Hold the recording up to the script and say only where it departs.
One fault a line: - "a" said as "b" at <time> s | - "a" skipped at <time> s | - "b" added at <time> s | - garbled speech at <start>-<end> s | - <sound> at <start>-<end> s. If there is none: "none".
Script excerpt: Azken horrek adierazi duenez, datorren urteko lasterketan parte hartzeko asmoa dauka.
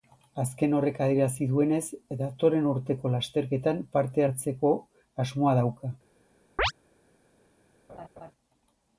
- chirp at 6.6-6.7 s
- laugh at 7.9-8.3 s